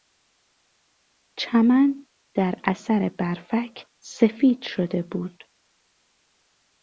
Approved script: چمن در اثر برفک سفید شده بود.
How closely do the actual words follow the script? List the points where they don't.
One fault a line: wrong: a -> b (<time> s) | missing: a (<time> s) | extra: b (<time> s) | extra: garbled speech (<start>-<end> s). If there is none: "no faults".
no faults